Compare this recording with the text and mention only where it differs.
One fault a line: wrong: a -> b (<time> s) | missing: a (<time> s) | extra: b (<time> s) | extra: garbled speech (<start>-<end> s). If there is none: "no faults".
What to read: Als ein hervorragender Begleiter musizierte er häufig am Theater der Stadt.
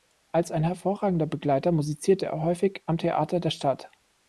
no faults